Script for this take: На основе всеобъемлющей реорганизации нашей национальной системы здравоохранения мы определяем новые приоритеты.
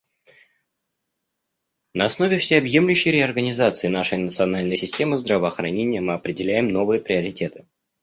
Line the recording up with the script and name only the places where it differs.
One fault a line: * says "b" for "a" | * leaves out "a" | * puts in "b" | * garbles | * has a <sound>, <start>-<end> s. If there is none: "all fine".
all fine